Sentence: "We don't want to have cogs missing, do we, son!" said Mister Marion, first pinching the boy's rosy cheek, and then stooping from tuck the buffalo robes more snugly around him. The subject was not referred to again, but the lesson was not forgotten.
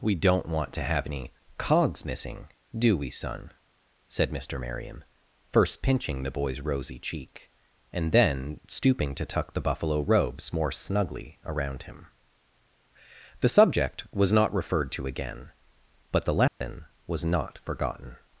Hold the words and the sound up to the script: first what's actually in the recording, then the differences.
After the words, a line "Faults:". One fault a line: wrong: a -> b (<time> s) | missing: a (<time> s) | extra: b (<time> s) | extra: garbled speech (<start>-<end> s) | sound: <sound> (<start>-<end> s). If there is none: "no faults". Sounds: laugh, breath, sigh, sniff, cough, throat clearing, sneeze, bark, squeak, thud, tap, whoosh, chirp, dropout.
"We don't want to have any cogs missing, do we, son!" said Mister Marion, first pinching the boy's rosy cheek, and then stooping to tuck the buffalo robes more snugly around him. The subject was not referred to again, but the lesson was not forgotten.
Faults:
extra: any (1.1 s)
wrong: from -> to (9.1 s)
sound: dropout (16.5-16.6 s)